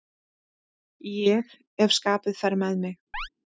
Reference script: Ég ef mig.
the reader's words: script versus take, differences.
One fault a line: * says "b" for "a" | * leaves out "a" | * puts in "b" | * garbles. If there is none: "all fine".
* puts in "skapið fer með"